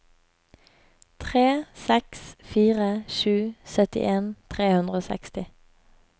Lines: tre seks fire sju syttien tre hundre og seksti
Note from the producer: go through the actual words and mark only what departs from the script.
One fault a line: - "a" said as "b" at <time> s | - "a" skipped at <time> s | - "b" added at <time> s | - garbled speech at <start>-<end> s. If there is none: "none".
none